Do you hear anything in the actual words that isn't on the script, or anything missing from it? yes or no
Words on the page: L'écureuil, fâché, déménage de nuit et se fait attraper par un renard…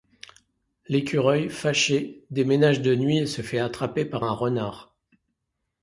no